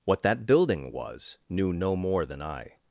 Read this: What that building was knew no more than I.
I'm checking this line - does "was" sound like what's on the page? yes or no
yes